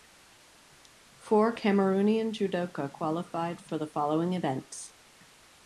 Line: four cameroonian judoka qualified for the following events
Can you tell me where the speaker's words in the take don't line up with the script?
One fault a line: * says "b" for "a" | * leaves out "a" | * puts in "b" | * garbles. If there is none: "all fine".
all fine